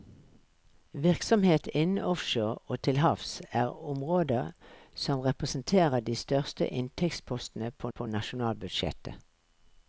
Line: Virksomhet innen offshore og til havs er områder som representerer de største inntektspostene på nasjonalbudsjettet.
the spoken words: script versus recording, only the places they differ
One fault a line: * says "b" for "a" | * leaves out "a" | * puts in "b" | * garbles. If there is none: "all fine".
* puts in "på"